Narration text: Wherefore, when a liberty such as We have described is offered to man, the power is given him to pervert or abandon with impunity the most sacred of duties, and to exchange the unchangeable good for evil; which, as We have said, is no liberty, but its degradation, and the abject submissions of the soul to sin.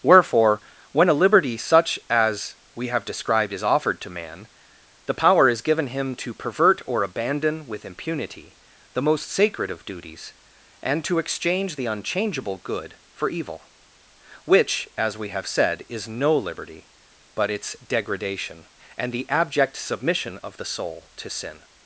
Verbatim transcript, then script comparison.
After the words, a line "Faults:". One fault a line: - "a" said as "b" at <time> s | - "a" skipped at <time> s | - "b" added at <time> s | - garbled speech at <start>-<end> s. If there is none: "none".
Wherefore, when a liberty such as We have described is offered to man, the power is given him to pervert or abandon with impunity the most sacred of duties, and to exchange the unchangeable good for evil; which, as We have said, is no liberty, but its degradation, and the abject submission of the soul to sin.
Faults:
- "submissions" said as "submission" at 19.8 s